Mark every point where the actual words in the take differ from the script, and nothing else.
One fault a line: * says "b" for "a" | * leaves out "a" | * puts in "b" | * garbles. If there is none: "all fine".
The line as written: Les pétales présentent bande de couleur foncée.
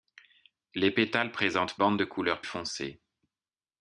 all fine